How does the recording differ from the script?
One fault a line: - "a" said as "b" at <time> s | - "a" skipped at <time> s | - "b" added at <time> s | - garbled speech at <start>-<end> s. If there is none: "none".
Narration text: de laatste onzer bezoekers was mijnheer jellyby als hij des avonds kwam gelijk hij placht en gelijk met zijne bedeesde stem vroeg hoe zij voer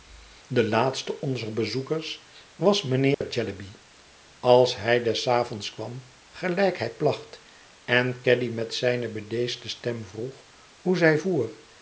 - "gelijk" said as "caddy" at 8.2 s